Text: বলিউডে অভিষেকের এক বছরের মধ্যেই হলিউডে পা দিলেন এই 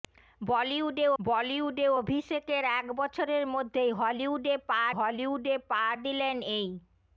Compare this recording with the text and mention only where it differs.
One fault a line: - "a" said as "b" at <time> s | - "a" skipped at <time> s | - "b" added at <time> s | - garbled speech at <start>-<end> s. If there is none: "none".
- "বলিউডে" added at 1.2 s
- "হলিউডে পা" added at 4.9 s